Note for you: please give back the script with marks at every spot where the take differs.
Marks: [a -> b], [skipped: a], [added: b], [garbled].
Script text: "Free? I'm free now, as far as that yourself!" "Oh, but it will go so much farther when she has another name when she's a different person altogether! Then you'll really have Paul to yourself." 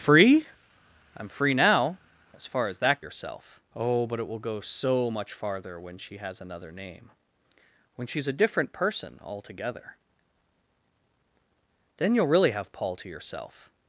"Free? I'm free now, as far as that yourself!" "Oh, but it will go so much farther when she has another name when she's a different person altogether! Then you'll really have Paul to yourself."